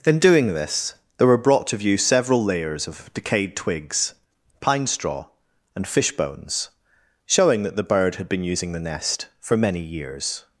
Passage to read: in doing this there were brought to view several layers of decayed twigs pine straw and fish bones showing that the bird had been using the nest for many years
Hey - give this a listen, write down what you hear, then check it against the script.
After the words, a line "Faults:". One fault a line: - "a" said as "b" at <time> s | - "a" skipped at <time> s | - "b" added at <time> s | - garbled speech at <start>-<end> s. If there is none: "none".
in doing this there were brought to view several layers of decayed twigs pine straw and fish bones showing that the bird had been using the nest for many years
Faults:
none